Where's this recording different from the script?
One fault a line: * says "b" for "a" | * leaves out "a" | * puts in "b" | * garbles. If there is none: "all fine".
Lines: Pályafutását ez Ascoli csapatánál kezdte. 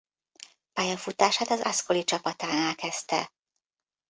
* says "az" for "ez"